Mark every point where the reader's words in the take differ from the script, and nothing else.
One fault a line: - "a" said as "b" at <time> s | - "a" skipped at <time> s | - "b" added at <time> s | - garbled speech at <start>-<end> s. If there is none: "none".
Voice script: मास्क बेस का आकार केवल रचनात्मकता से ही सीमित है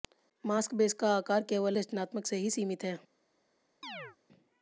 none